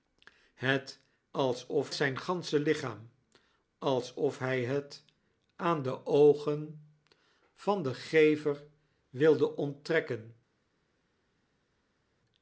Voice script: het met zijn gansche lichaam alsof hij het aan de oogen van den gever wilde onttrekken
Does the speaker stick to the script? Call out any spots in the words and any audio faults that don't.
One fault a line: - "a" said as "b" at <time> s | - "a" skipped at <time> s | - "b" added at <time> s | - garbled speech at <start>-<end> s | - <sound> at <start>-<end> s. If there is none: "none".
- "met" said as "alsof" at 1.3 s